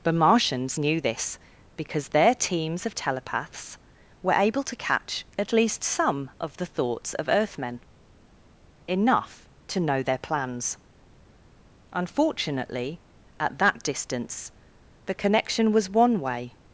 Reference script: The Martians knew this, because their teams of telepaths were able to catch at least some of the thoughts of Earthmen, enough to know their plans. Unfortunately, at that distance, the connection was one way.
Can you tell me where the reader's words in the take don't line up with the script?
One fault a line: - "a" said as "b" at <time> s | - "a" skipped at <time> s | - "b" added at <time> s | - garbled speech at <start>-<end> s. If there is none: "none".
none